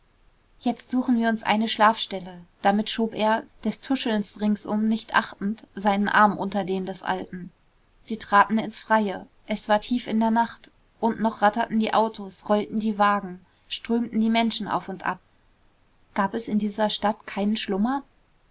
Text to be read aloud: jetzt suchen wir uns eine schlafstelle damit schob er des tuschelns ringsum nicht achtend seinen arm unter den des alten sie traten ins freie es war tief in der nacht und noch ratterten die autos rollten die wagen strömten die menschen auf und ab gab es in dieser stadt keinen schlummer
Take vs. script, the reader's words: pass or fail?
pass